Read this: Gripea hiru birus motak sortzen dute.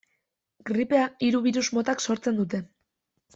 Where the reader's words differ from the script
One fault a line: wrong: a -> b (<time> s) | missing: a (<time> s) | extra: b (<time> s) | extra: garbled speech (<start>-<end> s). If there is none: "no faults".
no faults